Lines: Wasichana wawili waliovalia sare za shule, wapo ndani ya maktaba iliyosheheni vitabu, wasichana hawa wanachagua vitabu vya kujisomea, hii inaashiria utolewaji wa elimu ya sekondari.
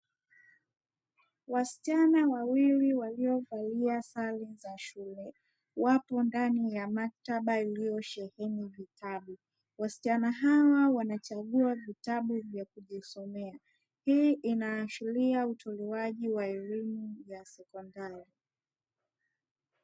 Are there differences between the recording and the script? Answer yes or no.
no